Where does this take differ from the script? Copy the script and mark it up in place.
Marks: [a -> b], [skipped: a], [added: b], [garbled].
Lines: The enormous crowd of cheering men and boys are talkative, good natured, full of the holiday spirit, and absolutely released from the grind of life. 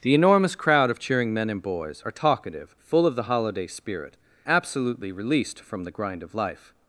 The enormous crowd of cheering men and boys are talkative, [skipped: good natured,] full of the holiday spirit, [skipped: and] absolutely released from the grind of life.